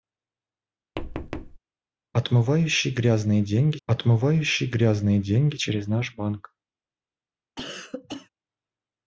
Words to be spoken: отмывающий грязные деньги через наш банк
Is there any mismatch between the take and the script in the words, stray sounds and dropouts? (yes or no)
yes